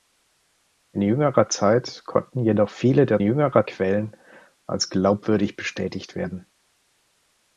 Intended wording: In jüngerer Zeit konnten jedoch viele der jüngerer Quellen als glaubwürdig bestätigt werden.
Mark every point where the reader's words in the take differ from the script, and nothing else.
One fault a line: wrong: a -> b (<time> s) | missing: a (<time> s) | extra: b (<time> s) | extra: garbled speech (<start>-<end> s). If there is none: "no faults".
no faults